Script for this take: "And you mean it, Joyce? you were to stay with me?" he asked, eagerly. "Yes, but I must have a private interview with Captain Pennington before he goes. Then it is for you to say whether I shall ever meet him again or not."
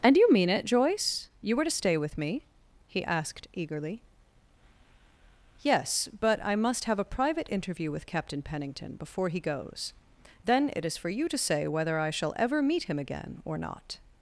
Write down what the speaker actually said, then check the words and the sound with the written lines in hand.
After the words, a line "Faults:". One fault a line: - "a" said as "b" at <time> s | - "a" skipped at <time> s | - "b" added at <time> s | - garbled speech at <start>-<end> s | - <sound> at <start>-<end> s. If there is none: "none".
"And you mean it, Joyce? you were to stay with me?" he asked, eagerly. "Yes, but I must have a private interview with Captain Pennington before he goes. Then it is for you to say whether I shall ever meet him again or not."
Faults:
none